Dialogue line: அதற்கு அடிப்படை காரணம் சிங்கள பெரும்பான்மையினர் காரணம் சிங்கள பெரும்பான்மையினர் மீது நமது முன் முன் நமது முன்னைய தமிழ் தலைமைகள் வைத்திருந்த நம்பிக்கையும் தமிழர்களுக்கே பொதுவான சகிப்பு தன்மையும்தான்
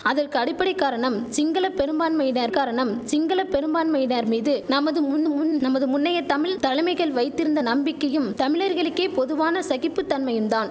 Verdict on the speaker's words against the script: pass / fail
pass